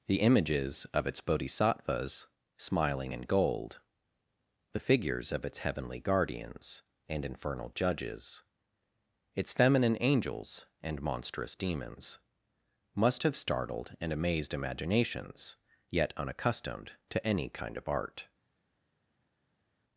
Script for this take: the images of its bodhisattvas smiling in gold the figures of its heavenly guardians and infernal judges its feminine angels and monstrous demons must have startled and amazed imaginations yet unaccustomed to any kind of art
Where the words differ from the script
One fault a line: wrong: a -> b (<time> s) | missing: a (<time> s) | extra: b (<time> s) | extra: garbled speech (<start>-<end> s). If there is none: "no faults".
no faults